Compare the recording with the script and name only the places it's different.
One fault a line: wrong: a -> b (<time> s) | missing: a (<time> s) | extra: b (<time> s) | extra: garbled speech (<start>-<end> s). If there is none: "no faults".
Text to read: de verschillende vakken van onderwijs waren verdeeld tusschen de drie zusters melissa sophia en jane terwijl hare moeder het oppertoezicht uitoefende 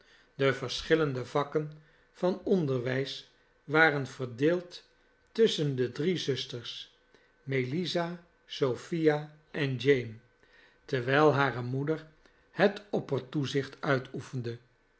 no faults